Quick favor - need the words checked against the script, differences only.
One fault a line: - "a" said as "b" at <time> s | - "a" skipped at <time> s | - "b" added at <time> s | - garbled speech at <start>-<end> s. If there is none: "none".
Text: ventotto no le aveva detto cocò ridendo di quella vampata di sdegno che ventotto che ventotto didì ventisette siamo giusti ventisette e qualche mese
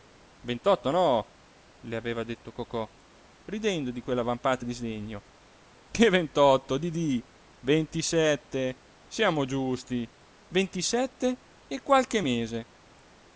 - "che ventotto" skipped at 6.8 s